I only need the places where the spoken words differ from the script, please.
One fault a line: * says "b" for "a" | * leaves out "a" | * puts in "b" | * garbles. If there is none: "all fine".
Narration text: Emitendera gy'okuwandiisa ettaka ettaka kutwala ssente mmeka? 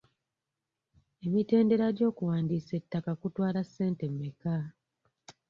* leaves out "ettaka"